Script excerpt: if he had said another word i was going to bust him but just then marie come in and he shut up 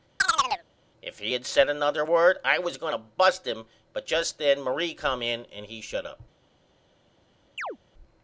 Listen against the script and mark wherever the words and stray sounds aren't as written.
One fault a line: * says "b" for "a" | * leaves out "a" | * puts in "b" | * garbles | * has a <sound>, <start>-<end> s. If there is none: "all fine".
* has a chirp, 0.2-0.6 s
* has a chirp, 7.6-7.8 s